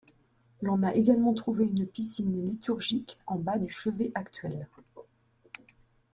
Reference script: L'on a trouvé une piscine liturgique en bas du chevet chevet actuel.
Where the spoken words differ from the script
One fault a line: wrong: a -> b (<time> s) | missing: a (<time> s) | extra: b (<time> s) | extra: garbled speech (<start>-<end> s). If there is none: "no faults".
extra: également (0.9 s)
missing: chevet (4.1 s)